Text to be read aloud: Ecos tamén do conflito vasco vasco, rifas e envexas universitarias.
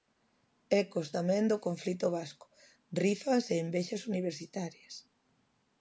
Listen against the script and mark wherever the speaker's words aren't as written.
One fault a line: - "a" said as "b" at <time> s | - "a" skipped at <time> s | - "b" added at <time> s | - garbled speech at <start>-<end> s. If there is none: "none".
- "vasco" skipped at 2.5 s